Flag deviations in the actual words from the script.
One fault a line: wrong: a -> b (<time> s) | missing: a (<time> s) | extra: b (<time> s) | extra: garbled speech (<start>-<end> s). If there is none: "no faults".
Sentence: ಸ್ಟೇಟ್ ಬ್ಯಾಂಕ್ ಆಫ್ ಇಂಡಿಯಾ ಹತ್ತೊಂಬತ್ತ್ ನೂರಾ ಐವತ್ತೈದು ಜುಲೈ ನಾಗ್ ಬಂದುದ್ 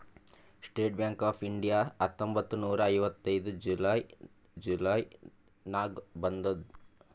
extra: ಜುಲೈ (4.6 s)